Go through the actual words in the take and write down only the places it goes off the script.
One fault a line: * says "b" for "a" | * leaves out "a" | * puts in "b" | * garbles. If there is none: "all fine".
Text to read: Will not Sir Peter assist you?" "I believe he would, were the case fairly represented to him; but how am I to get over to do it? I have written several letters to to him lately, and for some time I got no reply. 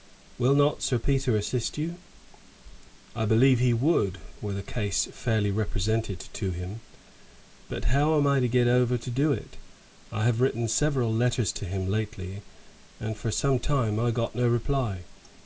* leaves out "to"